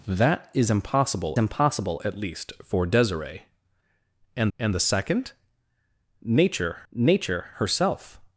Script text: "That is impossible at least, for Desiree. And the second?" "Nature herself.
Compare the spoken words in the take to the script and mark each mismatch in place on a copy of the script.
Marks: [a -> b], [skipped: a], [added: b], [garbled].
"That is impossible [added: impossible] at least, for Desiree. And [added: and] the second?" "Nature [added: nature] herself.